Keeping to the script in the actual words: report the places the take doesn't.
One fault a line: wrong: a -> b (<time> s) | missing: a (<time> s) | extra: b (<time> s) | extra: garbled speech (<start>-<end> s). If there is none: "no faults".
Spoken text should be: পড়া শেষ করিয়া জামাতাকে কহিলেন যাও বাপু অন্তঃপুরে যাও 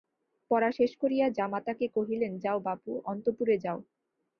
no faults